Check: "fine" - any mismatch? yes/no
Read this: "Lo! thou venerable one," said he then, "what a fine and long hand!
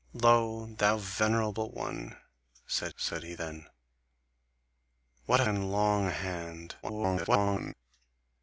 yes